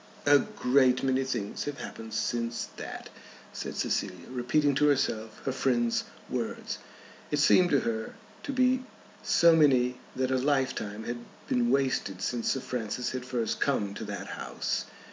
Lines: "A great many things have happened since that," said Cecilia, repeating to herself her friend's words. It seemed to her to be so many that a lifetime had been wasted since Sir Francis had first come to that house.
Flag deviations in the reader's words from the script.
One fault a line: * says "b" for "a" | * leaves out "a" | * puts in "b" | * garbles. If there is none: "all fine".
all fine